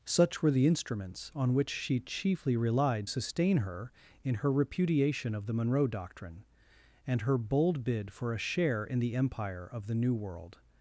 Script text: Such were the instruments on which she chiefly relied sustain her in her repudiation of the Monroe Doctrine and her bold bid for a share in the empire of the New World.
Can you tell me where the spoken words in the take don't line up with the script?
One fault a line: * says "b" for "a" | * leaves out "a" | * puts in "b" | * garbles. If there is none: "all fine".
all fine